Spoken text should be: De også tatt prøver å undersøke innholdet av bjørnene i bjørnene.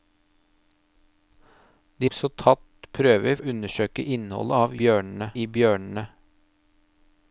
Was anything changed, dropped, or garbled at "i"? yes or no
no